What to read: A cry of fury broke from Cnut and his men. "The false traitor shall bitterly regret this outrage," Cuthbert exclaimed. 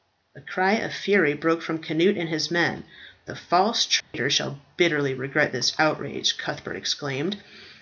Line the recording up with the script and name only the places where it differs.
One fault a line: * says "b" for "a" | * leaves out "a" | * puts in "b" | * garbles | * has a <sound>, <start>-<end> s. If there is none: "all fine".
* has a dropout, 4.0-4.1 s